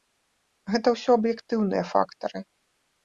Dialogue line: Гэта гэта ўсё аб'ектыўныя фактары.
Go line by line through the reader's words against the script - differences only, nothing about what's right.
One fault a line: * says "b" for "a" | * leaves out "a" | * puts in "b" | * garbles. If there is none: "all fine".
* leaves out "гэта"